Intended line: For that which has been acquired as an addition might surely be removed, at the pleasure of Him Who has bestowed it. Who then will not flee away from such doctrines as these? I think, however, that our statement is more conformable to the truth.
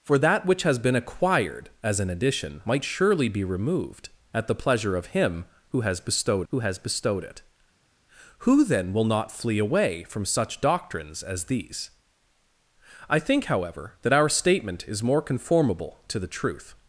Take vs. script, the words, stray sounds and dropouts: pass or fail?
fail